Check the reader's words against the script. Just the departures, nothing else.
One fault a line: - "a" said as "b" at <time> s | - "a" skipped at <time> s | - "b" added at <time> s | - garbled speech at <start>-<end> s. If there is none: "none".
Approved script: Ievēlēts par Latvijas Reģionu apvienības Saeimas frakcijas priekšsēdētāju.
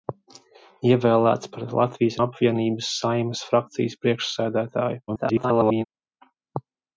- "Reģionu" skipped at 2.2 s
- garbled speech at 5.1-5.8 s